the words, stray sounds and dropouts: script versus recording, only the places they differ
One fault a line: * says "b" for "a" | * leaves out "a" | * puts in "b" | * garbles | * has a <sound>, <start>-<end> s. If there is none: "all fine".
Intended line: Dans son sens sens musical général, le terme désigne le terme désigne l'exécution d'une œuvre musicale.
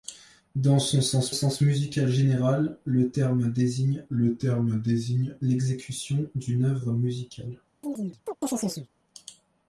* has a chirp, 7.8-8.9 s